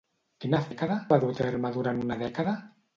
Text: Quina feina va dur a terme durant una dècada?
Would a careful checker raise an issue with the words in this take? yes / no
yes